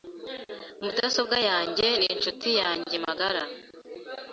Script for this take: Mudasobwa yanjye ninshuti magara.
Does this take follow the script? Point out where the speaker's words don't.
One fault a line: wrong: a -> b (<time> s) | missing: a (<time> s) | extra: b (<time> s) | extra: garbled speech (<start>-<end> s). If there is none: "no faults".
extra: yanjye (2.6 s)